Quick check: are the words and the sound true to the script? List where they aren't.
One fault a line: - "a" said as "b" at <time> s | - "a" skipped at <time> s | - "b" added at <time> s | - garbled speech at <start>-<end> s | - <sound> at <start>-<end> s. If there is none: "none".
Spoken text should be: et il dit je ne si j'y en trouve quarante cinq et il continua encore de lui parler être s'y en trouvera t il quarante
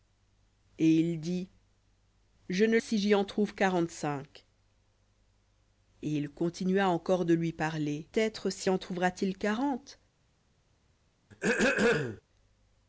- throat clearing at 11.3-12.2 s